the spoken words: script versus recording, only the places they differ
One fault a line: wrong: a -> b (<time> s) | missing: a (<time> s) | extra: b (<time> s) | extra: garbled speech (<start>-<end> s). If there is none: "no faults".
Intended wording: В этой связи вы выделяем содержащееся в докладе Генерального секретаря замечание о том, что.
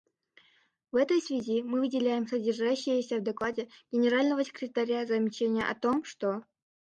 wrong: вы -> мы (1.6 s)